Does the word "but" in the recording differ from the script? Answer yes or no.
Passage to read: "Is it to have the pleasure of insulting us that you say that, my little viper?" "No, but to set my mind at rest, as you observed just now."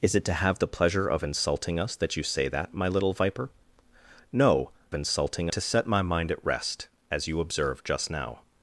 yes